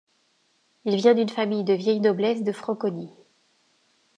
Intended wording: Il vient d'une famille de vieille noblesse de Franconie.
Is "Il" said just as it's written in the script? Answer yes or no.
yes